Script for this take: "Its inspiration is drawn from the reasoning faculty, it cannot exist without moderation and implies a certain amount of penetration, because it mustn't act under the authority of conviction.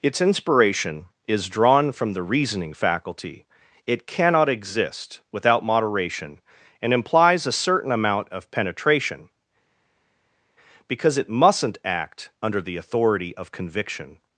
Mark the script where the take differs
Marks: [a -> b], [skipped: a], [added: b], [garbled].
"Its inspiration is drawn from the reasoning faculty, it cannot exist without moderation and implies a certain amount of penetration, because it mustn't act under the authority of conviction.